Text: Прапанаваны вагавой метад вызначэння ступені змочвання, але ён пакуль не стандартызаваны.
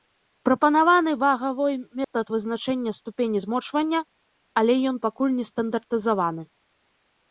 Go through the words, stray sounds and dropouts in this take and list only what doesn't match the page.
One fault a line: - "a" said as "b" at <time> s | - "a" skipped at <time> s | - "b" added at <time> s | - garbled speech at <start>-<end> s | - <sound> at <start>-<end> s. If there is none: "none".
- dropout at 2.0-2.1 s